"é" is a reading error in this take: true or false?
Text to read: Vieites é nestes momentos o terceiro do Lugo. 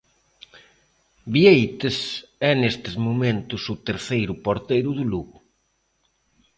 false